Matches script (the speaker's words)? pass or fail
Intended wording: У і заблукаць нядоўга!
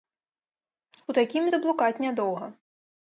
fail